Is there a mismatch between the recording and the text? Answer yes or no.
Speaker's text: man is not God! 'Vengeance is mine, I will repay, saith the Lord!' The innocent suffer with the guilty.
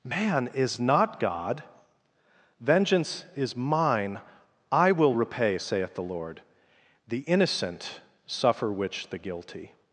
yes